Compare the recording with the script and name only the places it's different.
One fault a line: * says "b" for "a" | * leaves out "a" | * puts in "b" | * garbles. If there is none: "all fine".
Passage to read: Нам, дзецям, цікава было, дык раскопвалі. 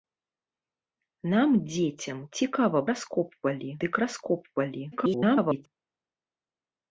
* says "раскопвалі" for "было"
* garbles